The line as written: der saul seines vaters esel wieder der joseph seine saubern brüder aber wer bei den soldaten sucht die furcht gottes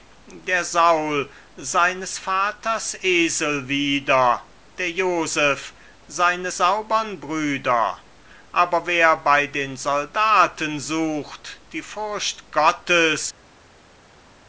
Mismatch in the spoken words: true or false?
false